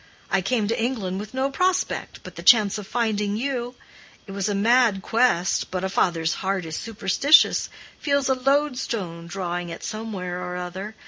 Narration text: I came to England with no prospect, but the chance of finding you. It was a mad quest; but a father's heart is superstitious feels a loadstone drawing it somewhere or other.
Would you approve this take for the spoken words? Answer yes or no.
yes